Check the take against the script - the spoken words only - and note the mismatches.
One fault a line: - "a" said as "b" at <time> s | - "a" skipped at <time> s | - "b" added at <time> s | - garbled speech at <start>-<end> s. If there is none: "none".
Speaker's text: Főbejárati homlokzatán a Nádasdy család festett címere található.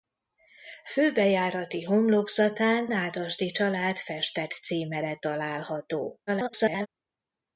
- "a" skipped at 2.9 s
- garbled speech at 6.3-6.9 s